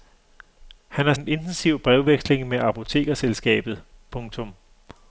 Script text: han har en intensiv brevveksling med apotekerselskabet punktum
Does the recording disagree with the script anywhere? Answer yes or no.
no